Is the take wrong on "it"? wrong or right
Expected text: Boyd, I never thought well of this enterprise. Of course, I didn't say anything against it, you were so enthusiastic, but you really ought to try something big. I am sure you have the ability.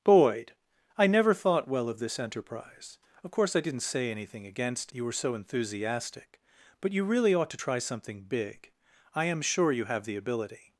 wrong